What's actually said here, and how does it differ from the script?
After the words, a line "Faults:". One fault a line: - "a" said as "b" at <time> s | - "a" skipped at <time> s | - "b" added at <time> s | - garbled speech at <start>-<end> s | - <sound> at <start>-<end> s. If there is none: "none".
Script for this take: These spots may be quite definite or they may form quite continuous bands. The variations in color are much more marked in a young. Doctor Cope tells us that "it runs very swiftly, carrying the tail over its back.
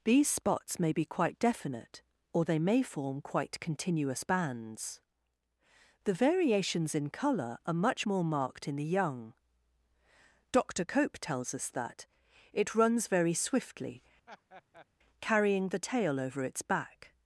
These spots may be quite definite or they may form quite continuous bands. The variations in color are much more marked in the young. Doctor Cope tells us that "it runs very swiftly, carrying the tail over its back.
Faults:
- "a" said as "the" at 8.8 s
- laugh at 14.3-14.9 s